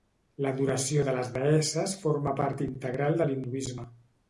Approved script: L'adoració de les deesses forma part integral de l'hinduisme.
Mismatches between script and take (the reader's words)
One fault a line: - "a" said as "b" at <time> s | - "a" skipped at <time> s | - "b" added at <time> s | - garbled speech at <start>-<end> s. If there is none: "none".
none